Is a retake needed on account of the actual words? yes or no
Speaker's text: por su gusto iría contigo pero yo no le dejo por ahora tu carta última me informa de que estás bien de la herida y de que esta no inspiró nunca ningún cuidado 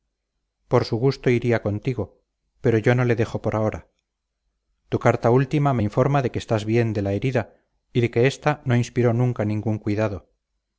no